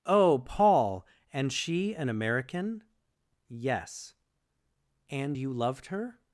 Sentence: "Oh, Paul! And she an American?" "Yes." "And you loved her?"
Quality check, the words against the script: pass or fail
pass